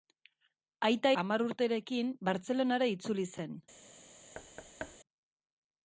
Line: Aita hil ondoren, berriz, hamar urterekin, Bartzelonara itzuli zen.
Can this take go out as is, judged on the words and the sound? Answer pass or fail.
fail